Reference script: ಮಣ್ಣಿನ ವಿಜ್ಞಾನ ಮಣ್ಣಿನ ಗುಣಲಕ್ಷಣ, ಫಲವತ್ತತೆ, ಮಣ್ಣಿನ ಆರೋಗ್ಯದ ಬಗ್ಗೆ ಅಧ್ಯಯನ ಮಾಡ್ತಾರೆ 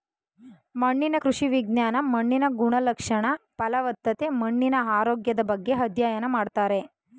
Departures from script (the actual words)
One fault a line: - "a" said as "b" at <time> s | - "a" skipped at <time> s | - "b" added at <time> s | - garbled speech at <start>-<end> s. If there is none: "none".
- "ಕೃಷಿ" added at 1.1 s